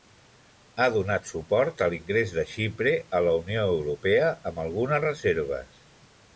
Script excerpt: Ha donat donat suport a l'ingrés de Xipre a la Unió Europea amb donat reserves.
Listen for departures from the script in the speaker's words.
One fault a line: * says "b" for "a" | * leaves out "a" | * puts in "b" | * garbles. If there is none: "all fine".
* leaves out "donat"
* says "algunes" for "donat"